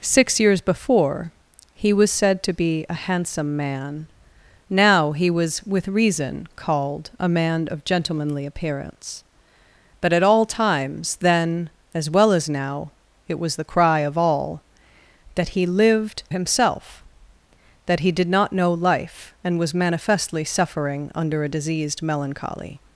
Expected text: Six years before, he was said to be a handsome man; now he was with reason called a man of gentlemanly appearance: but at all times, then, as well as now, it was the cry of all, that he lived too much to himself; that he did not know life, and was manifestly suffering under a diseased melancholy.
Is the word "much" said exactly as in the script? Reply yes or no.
no